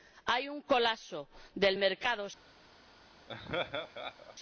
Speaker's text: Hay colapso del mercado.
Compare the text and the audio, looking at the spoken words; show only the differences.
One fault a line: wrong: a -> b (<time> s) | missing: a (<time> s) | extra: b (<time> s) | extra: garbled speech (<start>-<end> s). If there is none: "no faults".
extra: un (0.5 s)